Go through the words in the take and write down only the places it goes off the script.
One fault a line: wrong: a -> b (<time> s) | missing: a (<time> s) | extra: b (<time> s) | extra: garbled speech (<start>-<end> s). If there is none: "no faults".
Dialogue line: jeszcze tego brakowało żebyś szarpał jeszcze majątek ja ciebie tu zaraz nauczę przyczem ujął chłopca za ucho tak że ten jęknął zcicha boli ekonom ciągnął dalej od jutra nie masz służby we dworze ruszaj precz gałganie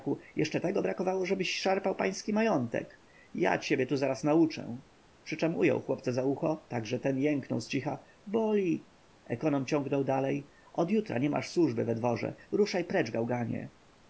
wrong: jeszcze -> pański (2.0 s)